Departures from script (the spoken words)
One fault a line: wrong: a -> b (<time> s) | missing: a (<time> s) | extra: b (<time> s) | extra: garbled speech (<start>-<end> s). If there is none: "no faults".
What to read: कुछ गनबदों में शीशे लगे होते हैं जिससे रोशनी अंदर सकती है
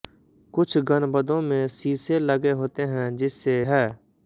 missing: रोशनी अंदर सकती (3.5 s)